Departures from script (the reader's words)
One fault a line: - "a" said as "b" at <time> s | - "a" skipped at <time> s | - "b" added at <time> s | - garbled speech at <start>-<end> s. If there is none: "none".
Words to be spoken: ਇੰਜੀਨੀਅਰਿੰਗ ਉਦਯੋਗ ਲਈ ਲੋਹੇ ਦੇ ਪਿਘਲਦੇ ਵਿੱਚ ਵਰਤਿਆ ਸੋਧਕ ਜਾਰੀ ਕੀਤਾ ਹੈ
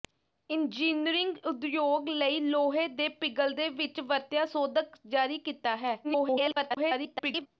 - garbled speech at 6.0-7.5 s